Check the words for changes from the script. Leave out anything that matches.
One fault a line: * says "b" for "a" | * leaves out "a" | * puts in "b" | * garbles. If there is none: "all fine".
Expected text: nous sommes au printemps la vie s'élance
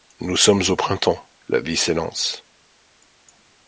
all fine